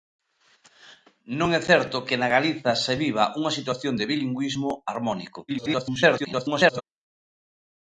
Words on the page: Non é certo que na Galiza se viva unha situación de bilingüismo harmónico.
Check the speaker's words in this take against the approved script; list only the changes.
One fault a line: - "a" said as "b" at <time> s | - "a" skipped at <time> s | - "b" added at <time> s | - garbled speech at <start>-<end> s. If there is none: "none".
- garbled speech at 5.5-6.8 s